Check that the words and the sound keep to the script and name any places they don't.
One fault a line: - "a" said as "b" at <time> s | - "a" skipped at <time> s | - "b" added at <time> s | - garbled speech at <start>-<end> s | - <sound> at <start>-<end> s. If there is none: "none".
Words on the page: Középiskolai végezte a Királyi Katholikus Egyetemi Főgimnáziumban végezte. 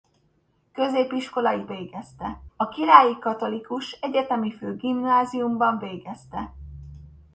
none